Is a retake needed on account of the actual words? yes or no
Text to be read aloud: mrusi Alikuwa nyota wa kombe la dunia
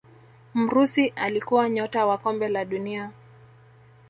no